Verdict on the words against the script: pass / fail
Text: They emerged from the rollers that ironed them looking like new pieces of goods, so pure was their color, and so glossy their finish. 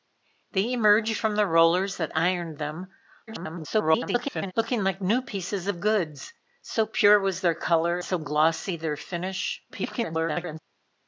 fail